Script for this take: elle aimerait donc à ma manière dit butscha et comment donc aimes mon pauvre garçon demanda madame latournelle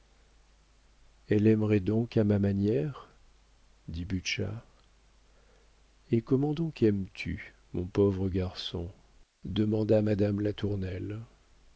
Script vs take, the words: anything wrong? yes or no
yes